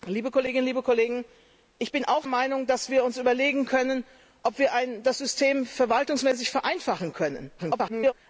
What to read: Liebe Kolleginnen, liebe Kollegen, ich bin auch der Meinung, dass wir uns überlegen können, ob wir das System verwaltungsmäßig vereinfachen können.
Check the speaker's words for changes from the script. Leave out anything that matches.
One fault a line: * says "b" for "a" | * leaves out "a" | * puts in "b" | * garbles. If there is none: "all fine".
* leaves out "der"
* garbles